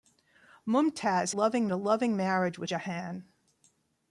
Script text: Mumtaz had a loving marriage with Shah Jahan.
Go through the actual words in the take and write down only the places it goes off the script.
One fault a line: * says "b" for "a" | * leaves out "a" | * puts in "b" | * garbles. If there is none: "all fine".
* says "loving" for "had"
* leaves out "Shah"